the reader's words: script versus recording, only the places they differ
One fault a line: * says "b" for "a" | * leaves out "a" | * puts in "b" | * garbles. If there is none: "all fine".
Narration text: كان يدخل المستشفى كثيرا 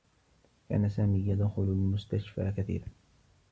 * puts in "سامي"